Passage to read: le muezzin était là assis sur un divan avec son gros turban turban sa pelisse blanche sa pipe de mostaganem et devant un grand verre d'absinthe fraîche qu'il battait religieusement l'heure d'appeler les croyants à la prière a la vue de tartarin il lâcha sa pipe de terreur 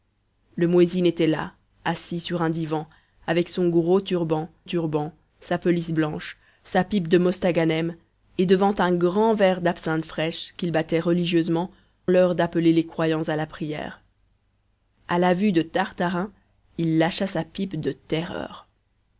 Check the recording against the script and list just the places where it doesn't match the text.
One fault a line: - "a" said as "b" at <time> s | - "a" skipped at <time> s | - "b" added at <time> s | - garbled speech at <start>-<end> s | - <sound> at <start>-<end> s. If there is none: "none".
none